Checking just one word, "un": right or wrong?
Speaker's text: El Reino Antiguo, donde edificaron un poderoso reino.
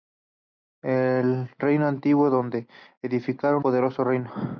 wrong